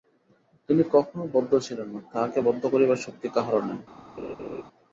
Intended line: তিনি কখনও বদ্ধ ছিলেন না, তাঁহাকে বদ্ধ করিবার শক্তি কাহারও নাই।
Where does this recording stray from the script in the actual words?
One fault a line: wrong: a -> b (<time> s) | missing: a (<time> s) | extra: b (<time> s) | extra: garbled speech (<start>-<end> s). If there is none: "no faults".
no faults